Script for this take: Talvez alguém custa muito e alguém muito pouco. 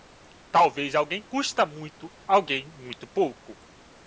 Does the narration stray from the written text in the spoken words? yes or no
yes